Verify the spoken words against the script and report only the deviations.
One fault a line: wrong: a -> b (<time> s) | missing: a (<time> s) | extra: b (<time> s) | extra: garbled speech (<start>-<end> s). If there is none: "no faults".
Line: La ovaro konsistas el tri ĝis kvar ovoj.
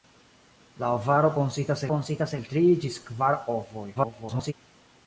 extra: konsistas (1.9 s)
extra: garbled speech (3.9-4.5 s)